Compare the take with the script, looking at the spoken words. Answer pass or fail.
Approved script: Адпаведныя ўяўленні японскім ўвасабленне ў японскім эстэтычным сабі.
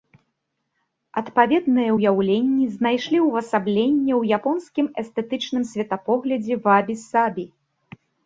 fail